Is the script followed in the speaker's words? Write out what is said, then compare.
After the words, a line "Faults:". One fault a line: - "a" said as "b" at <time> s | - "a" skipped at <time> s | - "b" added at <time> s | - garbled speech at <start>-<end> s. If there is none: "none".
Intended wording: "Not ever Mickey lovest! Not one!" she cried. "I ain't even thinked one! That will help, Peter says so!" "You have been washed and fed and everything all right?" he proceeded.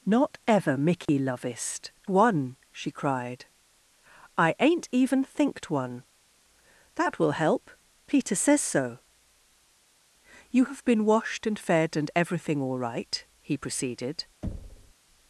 "Not ever Mickey lovest! One!" she cried. "I ain't even thinked one! That will help, Peter says so!" "You have been washed and fed and everything all right?" he proceeded.
Faults:
- "Not" skipped at 1.9 s